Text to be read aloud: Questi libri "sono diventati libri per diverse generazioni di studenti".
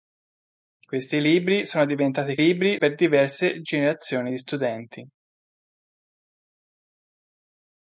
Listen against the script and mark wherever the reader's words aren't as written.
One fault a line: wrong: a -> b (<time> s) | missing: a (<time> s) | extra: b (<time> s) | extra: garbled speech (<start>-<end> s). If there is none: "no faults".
no faults